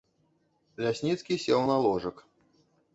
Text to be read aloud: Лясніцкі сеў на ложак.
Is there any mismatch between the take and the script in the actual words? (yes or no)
no